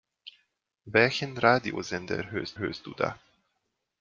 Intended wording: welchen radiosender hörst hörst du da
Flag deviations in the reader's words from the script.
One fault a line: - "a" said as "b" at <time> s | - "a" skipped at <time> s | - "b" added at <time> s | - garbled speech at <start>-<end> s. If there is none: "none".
none